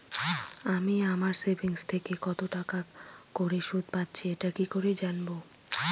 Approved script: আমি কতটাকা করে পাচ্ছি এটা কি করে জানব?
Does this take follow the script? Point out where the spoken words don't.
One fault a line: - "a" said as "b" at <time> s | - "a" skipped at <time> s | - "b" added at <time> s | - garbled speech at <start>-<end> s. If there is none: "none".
- "আমার সেভিংস থেকে" added at 1.1 s
- "সুদ" added at 3.6 s